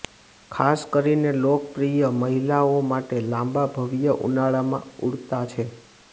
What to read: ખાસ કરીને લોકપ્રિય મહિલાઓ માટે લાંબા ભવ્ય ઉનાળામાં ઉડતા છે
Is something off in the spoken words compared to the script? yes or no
no